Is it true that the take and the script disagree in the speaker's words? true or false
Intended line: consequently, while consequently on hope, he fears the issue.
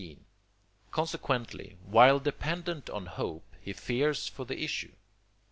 true